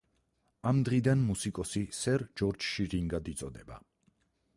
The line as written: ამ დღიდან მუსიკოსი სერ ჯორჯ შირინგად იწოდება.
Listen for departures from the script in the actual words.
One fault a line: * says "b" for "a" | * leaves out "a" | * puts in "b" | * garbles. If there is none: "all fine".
all fine